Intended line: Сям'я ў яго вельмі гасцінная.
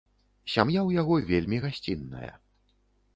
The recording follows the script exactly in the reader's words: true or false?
true